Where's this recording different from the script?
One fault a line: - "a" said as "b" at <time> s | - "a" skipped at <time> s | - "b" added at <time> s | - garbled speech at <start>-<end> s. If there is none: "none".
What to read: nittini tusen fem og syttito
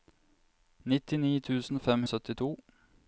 none